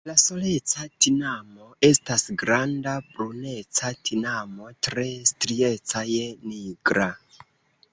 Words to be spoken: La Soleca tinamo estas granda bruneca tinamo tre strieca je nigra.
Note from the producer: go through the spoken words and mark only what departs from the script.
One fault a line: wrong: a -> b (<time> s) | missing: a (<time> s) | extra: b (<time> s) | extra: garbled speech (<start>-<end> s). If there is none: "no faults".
no faults